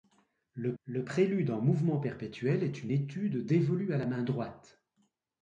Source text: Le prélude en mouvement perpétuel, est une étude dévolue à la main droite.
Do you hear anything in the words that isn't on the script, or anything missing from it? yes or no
yes